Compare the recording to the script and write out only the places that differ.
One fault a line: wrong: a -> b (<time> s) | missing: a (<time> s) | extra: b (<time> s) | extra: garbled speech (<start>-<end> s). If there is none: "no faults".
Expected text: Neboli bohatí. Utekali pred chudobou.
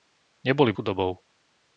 missing: bohatí Utekali pred (0.7 s)